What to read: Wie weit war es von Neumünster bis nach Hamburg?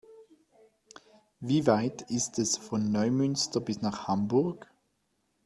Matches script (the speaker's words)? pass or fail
fail